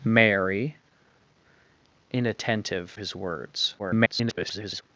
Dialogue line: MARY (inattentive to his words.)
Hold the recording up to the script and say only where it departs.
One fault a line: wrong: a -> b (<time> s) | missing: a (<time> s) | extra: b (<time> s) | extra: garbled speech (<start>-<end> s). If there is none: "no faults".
missing: to (3.0 s)
extra: garbled speech (3.8-4.8 s)